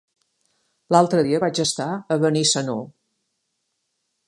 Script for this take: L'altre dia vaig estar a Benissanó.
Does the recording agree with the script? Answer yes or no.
yes